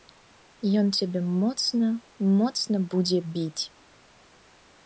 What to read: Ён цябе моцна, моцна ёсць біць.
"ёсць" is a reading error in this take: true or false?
true